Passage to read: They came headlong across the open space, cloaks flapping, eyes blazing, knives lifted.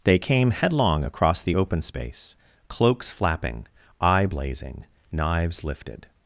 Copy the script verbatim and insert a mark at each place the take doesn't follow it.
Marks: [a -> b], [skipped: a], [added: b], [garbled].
They came headlong across the open space, cloaks flapping, [eyes -> eye] blazing, knives lifted.